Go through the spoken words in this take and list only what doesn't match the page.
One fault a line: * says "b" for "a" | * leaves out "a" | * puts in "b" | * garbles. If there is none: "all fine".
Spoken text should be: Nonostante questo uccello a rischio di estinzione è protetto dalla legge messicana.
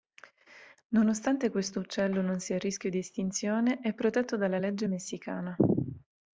* puts in "non sia"